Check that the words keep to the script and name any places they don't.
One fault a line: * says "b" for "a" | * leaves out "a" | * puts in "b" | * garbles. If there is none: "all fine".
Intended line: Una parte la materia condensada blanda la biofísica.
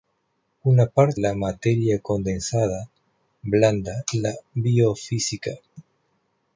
all fine